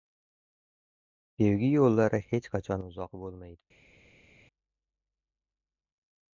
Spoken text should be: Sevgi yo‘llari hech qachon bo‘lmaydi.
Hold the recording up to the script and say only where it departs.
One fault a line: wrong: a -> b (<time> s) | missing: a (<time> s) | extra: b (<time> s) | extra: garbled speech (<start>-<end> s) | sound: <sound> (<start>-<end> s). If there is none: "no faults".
extra: uzoq (2.9 s)